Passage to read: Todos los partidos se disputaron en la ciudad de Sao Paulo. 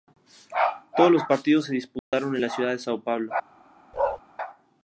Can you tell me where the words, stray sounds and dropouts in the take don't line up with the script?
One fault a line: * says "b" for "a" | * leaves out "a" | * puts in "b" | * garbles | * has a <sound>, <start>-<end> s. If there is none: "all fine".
* has a dropout, 2.0-2.1 s
* has a bark, 3.9-4.2 s